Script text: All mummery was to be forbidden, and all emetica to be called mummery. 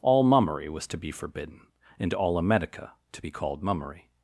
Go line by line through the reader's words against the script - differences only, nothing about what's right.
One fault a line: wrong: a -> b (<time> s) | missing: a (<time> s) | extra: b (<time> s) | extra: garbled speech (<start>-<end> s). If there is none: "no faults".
no faults